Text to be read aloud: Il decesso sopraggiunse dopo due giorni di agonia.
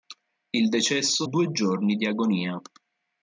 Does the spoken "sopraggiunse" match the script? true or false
false